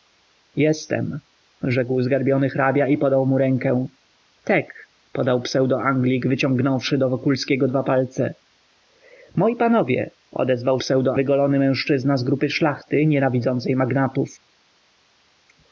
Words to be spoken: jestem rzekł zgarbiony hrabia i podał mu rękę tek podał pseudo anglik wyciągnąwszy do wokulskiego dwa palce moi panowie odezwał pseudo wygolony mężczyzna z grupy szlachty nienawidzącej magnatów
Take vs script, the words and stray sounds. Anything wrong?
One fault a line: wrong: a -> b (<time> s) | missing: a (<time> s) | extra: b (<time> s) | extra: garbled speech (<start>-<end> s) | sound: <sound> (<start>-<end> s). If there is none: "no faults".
no faults